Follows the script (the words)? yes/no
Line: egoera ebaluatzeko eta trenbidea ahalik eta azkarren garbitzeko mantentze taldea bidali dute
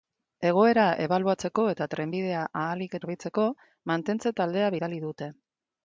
no